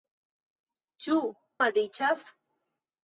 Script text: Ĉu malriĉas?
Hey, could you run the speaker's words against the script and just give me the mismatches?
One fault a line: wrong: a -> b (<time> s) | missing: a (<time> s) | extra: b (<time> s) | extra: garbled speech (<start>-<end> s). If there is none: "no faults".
no faults